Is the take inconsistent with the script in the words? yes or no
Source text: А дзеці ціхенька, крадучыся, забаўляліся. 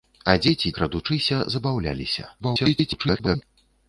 yes